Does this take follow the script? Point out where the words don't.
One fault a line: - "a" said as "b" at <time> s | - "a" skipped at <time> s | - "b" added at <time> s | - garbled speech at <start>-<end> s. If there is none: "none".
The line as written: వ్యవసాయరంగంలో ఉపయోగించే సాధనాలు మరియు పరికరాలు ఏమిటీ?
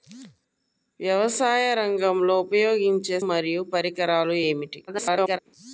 - "సాధనాలు" skipped at 3.2 s
- garbled speech at 4.9-5.4 s